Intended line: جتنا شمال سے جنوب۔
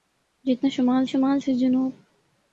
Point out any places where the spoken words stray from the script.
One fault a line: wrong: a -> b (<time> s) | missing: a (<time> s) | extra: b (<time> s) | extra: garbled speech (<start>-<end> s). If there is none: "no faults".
extra: شمال (1.1 s)